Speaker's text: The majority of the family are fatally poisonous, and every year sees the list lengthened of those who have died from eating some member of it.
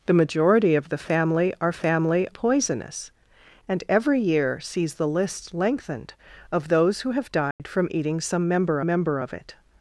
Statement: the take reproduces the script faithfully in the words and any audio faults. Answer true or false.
false